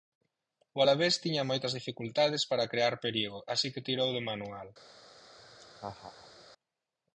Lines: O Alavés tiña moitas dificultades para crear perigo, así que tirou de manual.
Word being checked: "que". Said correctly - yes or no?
yes